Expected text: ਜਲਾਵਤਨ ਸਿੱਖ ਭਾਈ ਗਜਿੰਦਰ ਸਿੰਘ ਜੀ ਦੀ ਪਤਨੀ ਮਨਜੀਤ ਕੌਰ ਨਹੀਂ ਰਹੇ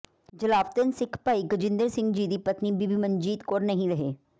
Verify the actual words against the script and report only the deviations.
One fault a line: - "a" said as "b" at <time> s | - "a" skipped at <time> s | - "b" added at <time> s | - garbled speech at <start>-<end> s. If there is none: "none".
- "ਬੀਬੀ" added at 2.7 s